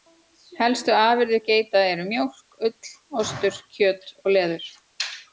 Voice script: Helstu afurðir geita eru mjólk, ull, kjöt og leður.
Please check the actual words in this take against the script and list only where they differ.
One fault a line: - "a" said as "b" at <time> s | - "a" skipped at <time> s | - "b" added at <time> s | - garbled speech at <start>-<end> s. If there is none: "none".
- "ostur" added at 3.2 s